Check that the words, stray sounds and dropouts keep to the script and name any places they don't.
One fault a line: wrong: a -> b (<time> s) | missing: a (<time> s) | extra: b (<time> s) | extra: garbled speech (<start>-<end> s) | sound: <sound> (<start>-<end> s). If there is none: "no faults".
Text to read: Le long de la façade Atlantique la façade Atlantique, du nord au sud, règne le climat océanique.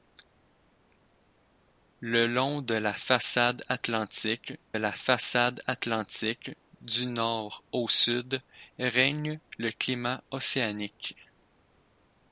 no faults